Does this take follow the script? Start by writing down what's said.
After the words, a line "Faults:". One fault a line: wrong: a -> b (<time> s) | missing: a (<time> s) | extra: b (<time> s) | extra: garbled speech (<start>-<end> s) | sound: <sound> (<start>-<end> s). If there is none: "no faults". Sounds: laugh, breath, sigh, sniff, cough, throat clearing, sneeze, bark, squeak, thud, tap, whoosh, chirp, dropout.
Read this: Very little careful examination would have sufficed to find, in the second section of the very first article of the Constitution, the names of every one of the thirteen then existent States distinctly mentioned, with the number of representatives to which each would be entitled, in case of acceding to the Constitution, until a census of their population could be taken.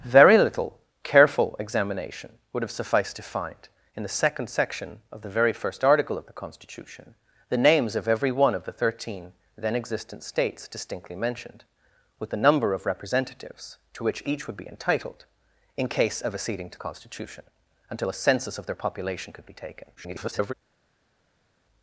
Very little careful examination would have sufficed to find, in the second section of the very first article of the Constitution, the names of every one of the thirteen then existent States distinctly mentioned, with the number of representatives to which each would be entitled, in case of acceding to Constitution, until a census of their population could be taken. [garbled]
Faults:
missing: the (16.8 s)
extra: garbled speech (20.0-20.5 s)